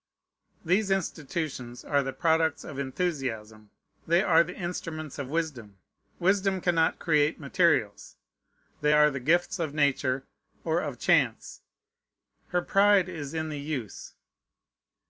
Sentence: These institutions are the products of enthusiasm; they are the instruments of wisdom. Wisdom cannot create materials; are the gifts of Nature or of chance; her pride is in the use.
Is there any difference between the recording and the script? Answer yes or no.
yes